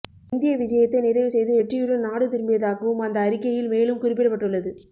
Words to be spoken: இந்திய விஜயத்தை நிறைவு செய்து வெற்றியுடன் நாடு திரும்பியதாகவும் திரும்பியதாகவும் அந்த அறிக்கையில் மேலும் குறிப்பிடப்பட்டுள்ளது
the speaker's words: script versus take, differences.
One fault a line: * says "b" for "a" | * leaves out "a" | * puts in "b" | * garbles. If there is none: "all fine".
* leaves out "திரும்பியதாகவும்"